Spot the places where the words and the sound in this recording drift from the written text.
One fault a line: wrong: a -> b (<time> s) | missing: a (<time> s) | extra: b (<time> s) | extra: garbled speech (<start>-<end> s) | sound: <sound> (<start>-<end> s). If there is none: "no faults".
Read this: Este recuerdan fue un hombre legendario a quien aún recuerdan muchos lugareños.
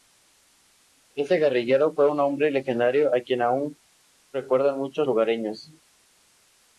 wrong: recuerdan -> guerrillero (1.4 s)